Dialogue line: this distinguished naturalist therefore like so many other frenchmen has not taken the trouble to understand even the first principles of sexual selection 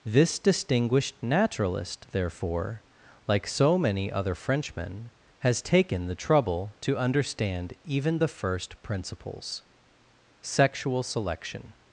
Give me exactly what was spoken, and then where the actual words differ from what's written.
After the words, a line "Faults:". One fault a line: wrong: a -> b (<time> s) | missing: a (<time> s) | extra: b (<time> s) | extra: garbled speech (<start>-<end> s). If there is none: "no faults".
this distinguished naturalist therefore like so many other frenchmen has taken the trouble to understand even the first principles sexual selection
Faults:
missing: not (5.6 s)
missing: of (9.6 s)